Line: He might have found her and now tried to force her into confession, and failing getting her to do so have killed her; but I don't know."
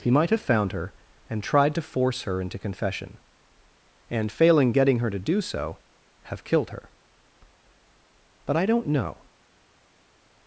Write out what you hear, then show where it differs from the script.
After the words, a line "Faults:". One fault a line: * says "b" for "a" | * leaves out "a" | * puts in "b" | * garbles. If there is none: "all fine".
He might have found her and tried to force her into confession, and failing getting her to do so have killed her; but I don't know."
Faults:
* leaves out "now"